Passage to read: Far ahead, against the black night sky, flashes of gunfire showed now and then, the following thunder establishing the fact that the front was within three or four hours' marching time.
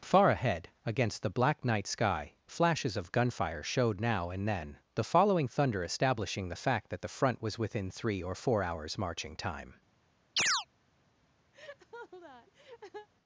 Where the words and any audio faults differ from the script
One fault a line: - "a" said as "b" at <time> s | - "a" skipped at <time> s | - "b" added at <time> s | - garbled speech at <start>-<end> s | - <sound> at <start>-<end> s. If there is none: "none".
- chirp at 10.4-10.7 s
- laugh at 11.5-13.1 s